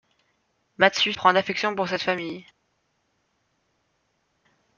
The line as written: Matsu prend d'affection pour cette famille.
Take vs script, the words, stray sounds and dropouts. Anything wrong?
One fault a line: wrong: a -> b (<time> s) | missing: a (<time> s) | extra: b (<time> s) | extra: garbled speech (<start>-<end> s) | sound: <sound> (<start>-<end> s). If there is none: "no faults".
no faults